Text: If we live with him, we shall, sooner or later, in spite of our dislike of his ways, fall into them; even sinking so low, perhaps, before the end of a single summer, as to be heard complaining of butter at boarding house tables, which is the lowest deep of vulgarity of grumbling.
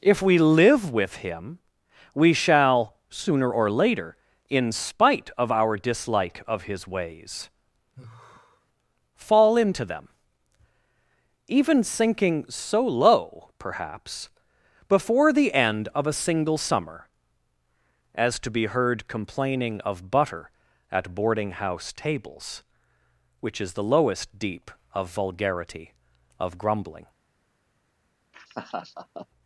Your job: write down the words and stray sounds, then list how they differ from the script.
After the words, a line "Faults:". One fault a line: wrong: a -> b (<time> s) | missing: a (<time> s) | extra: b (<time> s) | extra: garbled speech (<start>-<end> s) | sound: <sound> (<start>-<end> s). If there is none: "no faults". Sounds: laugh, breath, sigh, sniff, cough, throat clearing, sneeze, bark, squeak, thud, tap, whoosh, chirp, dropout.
If we live with him, we shall, sooner or later, in spite of our dislike of his ways, fall into them; even sinking so low, perhaps, before the end of a single summer, as to be heard complaining of butter at boarding house tables, which is the lowest deep of vulgarity of grumbling.
Faults:
sound: sigh (8.0-8.7 s)
sound: laugh (28.3-29.3 s)